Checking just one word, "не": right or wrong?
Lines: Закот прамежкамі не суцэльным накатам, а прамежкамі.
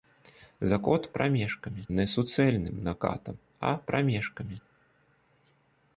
right